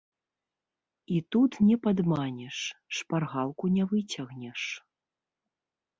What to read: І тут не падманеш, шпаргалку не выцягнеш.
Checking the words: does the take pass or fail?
pass